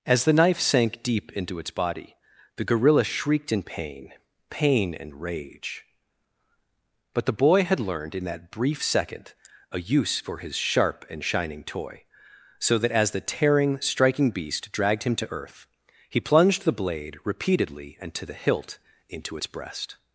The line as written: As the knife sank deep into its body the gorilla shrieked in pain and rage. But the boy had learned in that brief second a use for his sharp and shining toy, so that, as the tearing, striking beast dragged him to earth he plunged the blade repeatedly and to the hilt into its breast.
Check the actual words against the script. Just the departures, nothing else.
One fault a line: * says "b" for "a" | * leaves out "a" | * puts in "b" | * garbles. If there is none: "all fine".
* puts in "pain"